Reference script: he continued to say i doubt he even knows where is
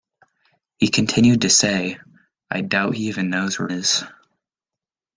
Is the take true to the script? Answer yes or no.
yes